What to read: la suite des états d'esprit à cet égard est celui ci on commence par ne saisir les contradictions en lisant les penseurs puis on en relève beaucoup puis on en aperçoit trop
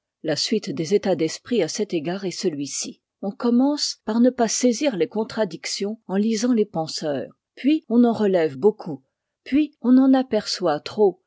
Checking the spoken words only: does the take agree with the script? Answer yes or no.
no